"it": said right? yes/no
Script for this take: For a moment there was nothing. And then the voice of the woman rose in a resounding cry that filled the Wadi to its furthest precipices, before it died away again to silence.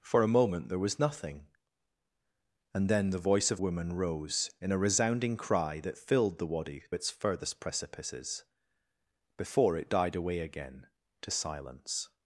yes